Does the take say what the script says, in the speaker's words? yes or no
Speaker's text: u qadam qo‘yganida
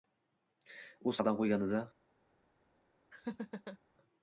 yes